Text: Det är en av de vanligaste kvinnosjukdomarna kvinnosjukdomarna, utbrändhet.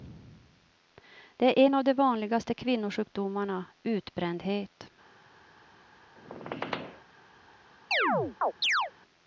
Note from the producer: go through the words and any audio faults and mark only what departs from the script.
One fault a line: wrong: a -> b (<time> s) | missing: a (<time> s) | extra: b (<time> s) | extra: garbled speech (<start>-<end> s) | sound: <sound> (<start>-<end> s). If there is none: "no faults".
missing: kvinnosjukdomarna (3.6 s)
sound: squeak (6.2-7.0 s)
sound: chirp (7.9-8.9 s)